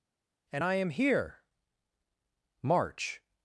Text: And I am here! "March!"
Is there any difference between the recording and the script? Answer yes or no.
no